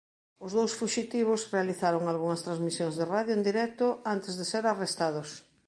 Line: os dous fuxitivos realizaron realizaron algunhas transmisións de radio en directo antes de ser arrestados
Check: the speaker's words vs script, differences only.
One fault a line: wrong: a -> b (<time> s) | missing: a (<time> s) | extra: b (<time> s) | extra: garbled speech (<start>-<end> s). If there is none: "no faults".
missing: realizaron (2.0 s)